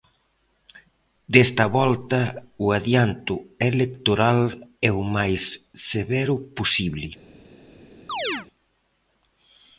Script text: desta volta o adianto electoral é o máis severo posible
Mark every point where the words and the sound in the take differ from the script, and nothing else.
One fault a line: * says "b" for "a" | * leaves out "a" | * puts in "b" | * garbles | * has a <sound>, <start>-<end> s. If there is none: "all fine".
* has a chirp, 8.1-8.5 s